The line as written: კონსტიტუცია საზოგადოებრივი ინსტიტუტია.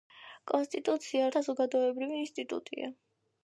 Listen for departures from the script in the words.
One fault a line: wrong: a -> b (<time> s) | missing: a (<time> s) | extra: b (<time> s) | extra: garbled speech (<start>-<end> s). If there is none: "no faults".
no faults